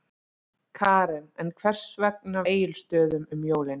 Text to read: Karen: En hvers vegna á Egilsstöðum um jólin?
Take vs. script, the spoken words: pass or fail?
pass